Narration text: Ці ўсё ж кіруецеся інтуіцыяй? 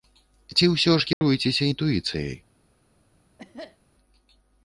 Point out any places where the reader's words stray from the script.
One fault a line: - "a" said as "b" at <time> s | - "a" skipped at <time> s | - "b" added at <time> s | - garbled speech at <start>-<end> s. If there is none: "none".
none